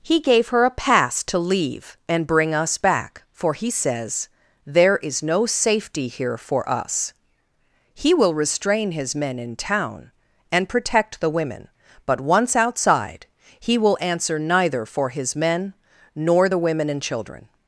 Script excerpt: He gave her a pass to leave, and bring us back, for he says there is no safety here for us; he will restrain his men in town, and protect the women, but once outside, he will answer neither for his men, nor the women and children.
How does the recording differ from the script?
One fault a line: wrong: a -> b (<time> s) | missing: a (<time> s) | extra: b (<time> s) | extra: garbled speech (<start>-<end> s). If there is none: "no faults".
no faults